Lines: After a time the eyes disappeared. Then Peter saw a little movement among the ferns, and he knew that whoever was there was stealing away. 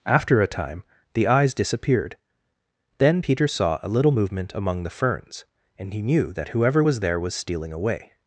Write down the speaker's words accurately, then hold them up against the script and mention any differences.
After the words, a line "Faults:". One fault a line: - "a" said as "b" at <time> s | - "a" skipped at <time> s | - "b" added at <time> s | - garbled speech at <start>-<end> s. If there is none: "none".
After a time the eyes disappeared. Then Peter saw a little movement among the ferns, and he knew that whoever was there was stealing away.
Faults:
none